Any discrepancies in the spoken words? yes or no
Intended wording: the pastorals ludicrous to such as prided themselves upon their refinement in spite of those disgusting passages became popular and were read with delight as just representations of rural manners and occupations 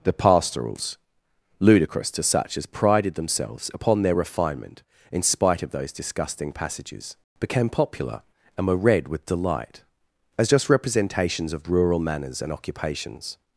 no